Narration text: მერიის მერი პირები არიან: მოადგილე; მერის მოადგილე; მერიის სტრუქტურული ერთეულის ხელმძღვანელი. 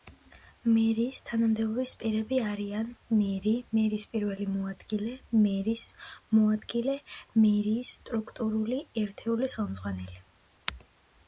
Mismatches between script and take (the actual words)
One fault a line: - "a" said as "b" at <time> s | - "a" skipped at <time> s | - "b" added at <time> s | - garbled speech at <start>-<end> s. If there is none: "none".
- "მერი" said as "თანამდებობის" at 1.2 s
- "მერი მერის პირველი" added at 3.2 s